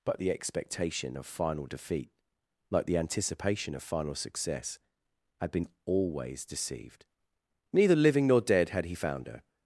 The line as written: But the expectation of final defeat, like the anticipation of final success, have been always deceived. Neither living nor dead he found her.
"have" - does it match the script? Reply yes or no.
no